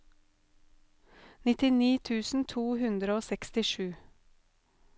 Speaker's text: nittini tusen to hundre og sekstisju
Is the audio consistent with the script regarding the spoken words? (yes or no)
yes